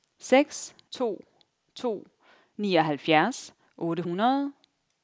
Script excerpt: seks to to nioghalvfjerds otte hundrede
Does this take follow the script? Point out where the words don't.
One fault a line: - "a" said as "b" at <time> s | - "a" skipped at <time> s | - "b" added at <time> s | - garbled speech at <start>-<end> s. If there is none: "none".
none